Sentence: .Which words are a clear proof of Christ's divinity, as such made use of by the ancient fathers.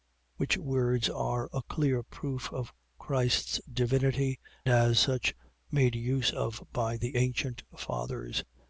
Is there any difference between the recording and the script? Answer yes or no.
no